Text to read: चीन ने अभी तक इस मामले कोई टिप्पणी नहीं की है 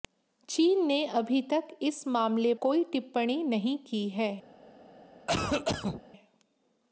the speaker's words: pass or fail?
pass